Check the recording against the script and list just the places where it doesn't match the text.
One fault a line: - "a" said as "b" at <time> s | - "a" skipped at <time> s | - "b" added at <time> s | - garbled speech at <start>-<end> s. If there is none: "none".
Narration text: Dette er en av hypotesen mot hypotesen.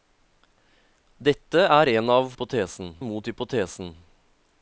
none